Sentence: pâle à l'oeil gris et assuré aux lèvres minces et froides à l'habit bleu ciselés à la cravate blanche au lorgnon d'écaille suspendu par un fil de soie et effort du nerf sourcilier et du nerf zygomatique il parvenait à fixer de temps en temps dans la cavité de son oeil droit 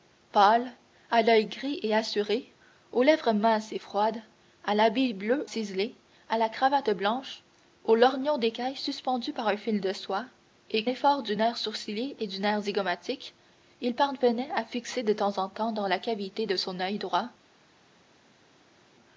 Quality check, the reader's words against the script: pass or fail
pass